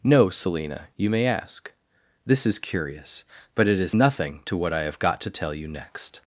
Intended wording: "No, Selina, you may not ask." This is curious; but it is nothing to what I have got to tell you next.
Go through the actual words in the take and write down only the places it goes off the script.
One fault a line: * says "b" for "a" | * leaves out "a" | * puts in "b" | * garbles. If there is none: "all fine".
* leaves out "not"